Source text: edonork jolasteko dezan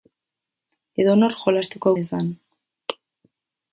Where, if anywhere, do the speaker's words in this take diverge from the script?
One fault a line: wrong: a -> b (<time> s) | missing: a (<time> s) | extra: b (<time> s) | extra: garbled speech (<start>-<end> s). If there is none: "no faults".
no faults